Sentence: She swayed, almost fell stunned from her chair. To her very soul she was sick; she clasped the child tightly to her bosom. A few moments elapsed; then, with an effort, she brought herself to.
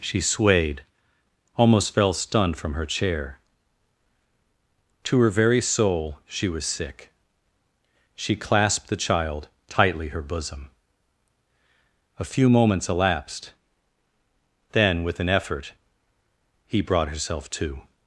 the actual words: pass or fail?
fail